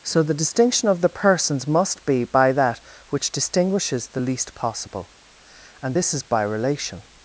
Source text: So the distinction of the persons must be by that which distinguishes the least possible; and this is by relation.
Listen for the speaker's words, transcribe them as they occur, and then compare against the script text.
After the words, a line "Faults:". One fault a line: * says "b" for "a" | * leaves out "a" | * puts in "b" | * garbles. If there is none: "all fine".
So the distinction of the persons must be by that which distinguishes the least possible; and this is by relation.
Faults:
all fine